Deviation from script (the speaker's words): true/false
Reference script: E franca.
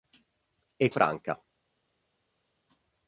false